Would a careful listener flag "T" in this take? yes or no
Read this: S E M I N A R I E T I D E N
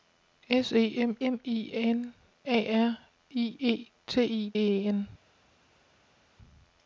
no